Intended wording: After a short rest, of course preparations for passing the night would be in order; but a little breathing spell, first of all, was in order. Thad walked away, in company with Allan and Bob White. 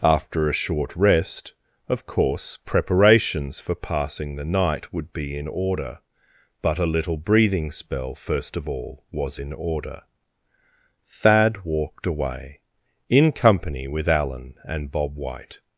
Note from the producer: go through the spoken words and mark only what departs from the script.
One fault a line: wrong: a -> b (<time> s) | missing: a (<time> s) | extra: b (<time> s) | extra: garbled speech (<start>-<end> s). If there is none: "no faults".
no faults